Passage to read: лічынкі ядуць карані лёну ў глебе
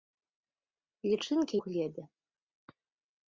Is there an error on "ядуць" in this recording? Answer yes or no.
yes